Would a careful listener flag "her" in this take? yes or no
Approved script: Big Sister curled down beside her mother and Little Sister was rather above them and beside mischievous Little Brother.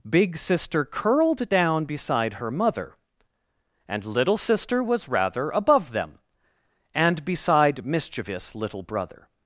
no